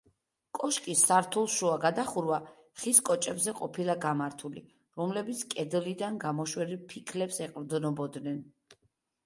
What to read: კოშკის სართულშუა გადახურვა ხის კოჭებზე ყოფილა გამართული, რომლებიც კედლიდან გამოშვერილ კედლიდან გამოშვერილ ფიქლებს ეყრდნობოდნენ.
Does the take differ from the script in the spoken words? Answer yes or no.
yes